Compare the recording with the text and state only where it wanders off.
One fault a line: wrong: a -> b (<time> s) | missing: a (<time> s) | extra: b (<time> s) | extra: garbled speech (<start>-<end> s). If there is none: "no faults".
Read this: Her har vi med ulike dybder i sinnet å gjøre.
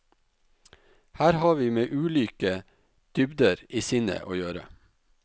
no faults